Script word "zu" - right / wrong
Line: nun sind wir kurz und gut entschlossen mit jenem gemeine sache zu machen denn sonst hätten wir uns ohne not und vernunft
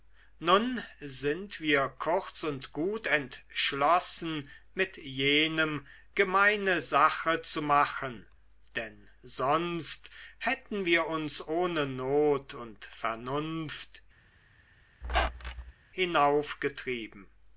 right